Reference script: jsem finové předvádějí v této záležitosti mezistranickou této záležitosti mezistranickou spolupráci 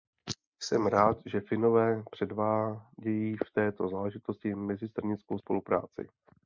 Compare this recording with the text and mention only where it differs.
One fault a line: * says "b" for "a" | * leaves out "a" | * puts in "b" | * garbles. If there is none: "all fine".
* puts in "rád že"
* leaves out "této záležitosti mezistranickou"